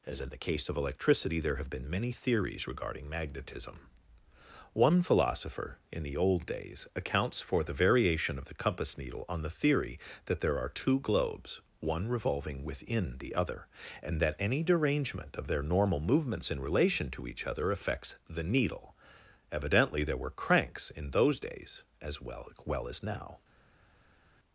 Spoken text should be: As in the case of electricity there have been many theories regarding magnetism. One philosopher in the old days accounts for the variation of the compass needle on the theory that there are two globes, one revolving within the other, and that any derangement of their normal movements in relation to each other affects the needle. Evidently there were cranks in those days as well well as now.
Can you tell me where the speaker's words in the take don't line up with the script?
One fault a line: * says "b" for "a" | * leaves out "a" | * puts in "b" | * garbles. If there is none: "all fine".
all fine